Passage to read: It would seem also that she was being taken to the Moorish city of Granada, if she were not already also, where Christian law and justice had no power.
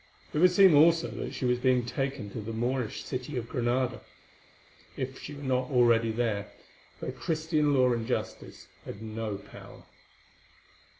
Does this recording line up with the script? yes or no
no